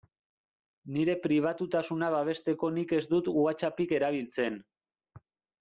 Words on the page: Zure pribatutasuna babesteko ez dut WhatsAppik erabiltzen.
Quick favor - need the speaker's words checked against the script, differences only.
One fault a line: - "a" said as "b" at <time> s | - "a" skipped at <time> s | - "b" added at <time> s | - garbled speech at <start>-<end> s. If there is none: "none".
- "Zure" said as "Nire" at 0.9 s
- "nik" added at 2.8 s